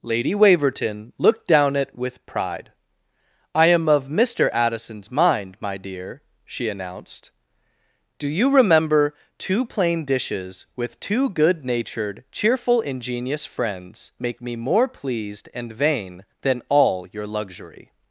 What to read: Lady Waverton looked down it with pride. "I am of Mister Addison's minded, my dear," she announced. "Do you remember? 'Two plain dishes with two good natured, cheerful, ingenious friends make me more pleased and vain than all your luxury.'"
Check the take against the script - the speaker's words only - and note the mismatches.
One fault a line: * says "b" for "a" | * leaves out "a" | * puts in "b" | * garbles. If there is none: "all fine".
* says "mind" for "minded"